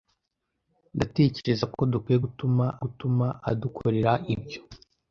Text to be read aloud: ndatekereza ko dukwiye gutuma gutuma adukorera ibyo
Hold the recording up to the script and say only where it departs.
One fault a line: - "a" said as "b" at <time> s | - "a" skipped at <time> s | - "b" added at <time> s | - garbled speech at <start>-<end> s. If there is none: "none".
none